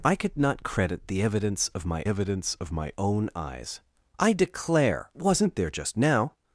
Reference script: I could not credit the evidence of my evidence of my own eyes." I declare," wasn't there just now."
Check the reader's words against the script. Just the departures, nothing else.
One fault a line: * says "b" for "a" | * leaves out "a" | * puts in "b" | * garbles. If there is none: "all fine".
all fine